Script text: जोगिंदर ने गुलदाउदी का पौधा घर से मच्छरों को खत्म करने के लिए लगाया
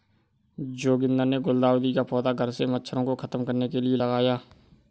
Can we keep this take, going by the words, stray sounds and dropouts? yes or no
yes